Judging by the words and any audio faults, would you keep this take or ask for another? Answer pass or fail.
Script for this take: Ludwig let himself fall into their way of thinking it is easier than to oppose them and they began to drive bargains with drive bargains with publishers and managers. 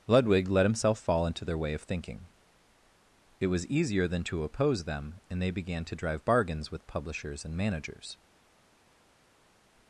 fail